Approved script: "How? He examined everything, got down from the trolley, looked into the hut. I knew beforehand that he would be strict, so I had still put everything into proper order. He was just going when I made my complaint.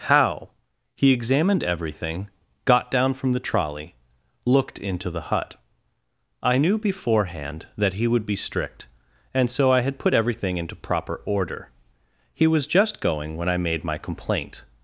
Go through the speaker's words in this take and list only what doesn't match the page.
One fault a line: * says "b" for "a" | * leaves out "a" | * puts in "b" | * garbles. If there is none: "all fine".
* puts in "and"
* leaves out "still"